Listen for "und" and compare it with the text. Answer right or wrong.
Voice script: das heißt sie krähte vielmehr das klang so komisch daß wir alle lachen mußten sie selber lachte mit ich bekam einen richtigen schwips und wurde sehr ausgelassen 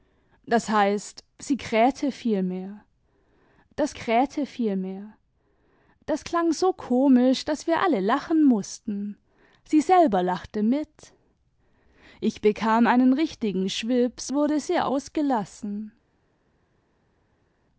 wrong